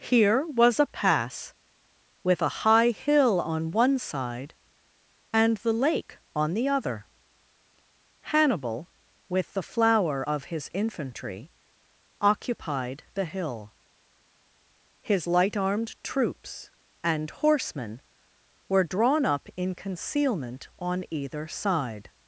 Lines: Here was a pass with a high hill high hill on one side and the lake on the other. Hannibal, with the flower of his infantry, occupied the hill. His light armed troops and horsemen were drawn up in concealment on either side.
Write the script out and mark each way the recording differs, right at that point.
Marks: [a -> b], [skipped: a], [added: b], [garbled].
Here was a pass with a high hill [skipped: high hill] on one side and the lake on the other. Hannibal, with the flower of his infantry, occupied the hill. His light armed troops and horsemen were drawn up in concealment on either side.